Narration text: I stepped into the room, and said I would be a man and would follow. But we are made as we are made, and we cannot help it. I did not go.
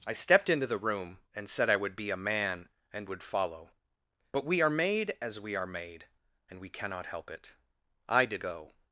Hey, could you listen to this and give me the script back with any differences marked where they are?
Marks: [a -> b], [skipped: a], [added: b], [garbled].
I stepped into the room, and said I would be a man and would follow. But we are made as we are made, and we cannot help it. I did [skipped: not] go.